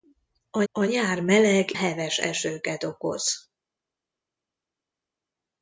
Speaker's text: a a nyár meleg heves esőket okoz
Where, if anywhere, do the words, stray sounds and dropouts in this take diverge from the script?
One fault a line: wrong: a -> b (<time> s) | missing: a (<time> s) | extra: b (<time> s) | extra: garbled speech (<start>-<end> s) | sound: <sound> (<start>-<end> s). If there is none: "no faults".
no faults